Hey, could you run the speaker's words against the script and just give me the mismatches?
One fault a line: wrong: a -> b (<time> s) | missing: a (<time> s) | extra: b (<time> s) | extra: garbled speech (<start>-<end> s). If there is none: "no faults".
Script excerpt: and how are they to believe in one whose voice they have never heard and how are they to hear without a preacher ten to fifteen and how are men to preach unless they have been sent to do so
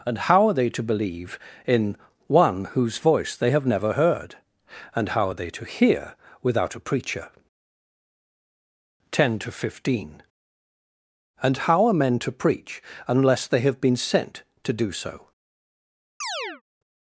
no faults